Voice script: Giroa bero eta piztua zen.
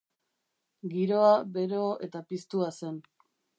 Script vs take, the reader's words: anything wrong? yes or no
no